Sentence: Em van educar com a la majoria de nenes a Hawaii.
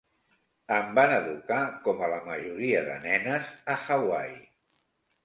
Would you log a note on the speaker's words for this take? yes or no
no